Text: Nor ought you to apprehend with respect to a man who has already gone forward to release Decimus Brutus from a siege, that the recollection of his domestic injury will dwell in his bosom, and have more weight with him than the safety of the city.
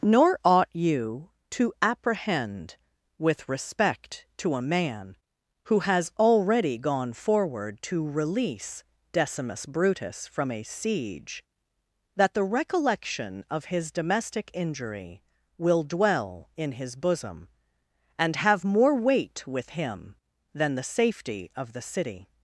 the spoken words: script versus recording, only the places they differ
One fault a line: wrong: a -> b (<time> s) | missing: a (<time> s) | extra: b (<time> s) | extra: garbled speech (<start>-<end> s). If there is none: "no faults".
no faults